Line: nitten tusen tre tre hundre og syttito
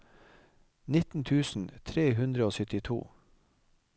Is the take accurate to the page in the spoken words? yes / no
no